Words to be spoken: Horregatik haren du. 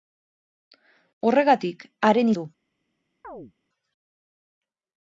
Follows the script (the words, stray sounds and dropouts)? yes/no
no